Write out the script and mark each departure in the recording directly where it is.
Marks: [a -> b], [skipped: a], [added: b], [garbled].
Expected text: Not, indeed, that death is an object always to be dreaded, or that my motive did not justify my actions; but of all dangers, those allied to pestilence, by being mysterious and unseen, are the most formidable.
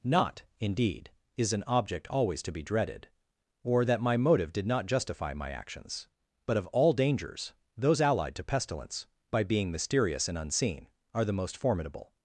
Not, indeed, [skipped: that death] is an object always to be dreaded, or that my motive did not justify my actions; but of all dangers, those allied to pestilence, by being mysterious and unseen, are the most formidable.